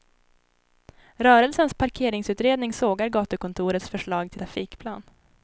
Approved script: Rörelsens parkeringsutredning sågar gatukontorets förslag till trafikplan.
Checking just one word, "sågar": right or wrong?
right